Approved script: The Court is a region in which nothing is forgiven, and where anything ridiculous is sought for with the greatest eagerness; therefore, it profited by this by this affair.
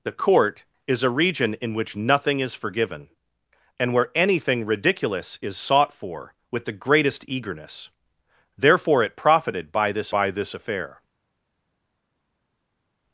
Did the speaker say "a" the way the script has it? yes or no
yes